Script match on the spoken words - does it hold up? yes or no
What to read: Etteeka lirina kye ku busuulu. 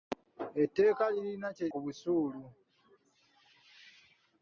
yes